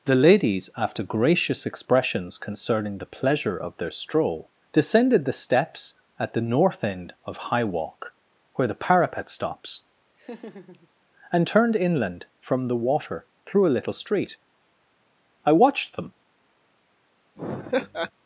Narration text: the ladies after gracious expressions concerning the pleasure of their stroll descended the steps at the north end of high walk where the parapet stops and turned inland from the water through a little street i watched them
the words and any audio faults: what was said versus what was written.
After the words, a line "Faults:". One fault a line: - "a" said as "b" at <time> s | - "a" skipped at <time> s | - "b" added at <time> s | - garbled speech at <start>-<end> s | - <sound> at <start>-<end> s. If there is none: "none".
the ladies after gracious expressions concerning the pleasure of their stroll descended the steps at the north end of high walk where the parapet stops and turned inland from the water through a little street i watched them
Faults:
- laugh at 10.2-10.9 s
- laugh at 17.4-18.1 s